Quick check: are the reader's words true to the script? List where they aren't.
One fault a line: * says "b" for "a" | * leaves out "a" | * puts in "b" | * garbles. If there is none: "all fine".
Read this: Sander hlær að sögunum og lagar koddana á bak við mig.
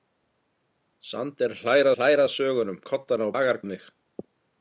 * puts in "hlær"
* leaves out "og lagar"
* says "lagar" for "bak"